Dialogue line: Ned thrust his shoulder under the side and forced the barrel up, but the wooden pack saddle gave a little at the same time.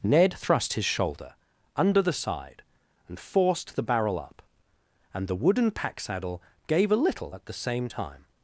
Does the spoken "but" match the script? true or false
false